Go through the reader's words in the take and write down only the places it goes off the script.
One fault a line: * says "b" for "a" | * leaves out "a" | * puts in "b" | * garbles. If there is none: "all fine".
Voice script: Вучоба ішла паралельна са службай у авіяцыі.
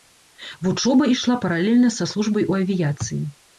all fine